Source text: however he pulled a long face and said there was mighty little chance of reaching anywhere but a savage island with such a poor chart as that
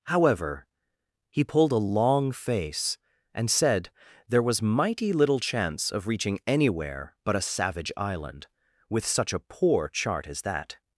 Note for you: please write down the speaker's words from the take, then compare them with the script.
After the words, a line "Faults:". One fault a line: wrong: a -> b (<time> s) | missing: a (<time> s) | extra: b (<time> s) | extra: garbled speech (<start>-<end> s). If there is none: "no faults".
however he pulled a long face and said there was mighty little chance of reaching anywhere but a savage island with such a poor chart as that
Faults:
no faults